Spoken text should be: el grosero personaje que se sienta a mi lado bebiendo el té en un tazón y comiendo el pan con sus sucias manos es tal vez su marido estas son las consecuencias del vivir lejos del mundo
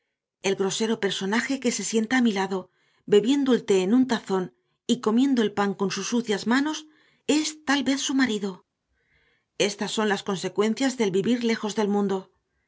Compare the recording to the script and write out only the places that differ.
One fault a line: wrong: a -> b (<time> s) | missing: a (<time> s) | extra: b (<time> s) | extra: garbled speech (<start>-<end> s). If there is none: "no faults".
no faults